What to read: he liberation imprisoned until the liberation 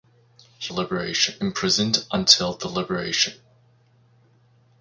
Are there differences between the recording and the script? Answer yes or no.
no